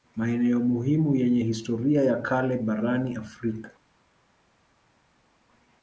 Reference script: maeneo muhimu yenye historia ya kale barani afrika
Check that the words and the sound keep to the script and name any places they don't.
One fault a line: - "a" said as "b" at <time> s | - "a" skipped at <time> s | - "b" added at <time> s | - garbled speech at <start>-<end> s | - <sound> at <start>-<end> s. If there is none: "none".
none